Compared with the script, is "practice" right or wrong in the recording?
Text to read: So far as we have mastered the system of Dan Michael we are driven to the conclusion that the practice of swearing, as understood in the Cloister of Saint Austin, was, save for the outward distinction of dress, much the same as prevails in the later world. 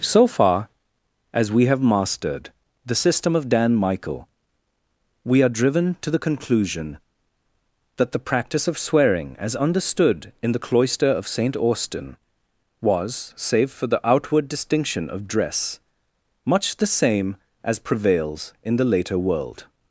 right